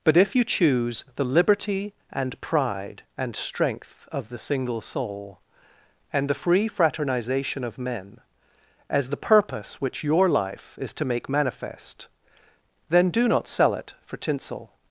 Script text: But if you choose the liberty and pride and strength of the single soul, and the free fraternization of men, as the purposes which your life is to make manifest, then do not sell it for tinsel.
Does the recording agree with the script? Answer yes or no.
no